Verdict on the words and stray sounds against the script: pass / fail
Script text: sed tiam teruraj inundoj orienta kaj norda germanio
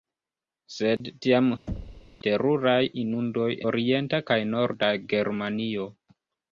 fail